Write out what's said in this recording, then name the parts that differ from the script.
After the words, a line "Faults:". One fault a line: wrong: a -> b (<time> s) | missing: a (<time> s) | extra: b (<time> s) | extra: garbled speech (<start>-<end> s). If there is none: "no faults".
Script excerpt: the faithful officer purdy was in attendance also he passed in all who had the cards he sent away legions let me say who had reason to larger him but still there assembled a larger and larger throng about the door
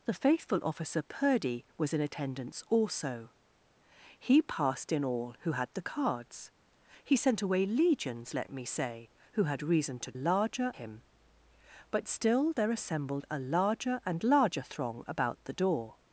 the faithful officer purdy was in attendance also he passed in all who had the cards he sent away legions let me say who had reason to larger him but still there assembled a larger and larger throng about the door
Faults:
no faults